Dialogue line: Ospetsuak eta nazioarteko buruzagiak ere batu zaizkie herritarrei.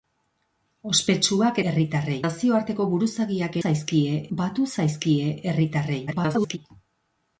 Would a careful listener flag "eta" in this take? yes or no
yes